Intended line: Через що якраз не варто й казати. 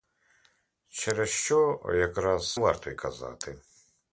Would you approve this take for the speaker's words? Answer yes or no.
no